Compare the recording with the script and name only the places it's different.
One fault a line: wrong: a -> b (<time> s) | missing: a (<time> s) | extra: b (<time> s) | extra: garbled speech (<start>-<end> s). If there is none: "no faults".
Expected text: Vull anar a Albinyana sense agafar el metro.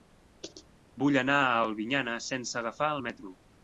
no faults